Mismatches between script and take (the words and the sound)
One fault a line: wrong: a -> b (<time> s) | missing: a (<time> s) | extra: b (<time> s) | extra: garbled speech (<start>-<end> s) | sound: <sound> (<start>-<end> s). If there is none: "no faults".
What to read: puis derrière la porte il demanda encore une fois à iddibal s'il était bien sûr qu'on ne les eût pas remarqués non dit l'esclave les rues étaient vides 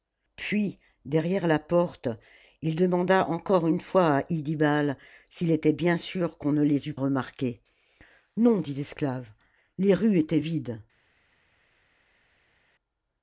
missing: pas (7.0 s)